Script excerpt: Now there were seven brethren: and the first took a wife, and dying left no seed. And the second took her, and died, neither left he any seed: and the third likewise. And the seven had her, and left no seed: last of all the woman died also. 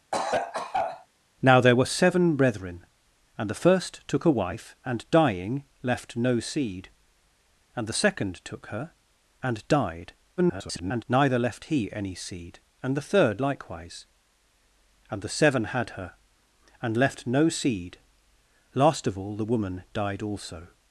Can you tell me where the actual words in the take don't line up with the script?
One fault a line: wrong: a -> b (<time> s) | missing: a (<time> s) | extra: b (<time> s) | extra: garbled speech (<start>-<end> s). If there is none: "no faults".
extra: garbled speech (10.4-11.0 s)